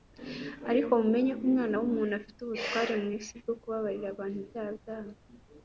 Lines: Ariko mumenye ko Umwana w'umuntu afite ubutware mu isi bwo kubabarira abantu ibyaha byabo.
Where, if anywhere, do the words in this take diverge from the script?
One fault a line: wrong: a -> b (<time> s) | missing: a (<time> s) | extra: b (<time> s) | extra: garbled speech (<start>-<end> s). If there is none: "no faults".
no faults